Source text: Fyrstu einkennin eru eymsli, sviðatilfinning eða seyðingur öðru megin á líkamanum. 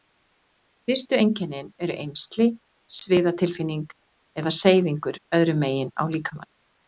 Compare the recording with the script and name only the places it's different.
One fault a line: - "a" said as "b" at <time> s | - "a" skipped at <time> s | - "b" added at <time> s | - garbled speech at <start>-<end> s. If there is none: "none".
none